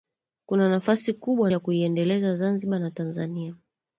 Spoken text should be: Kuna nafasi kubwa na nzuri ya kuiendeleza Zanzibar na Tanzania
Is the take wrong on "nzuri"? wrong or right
wrong